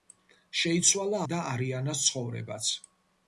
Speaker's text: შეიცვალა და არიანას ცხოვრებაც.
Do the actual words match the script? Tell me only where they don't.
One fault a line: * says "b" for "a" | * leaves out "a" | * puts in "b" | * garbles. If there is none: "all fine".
all fine